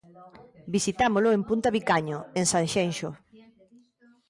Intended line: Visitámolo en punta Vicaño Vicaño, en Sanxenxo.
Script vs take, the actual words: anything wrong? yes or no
yes